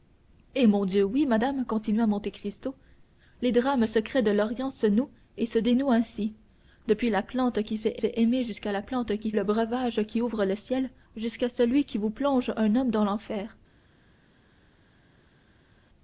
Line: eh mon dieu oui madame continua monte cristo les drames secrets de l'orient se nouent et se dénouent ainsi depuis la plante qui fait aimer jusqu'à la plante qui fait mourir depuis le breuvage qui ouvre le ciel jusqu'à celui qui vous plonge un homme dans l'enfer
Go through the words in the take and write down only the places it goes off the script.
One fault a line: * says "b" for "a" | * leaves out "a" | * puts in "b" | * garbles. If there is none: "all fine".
* puts in "fait"
* leaves out "fait mourir depuis"